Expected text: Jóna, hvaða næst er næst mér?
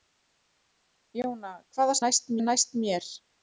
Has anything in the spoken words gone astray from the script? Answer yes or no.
no